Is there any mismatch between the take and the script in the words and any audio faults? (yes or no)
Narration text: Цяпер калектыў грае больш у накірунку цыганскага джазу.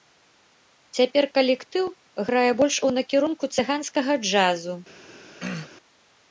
yes